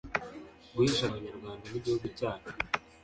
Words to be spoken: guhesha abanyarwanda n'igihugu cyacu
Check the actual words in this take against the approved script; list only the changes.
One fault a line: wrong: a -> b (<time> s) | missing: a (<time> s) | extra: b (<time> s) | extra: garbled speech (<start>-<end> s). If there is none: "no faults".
no faults